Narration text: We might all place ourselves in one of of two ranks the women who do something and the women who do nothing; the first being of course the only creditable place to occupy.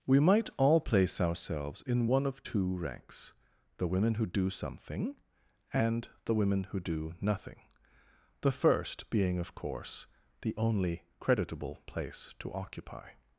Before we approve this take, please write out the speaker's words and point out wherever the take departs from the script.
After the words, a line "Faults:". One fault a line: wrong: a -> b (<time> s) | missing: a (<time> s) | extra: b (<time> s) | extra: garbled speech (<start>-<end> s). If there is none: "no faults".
We might all place ourselves in one of two ranks the women who do something and the women who do nothing; the first being of course the only creditable place to occupy.
Faults:
missing: of (2.4 s)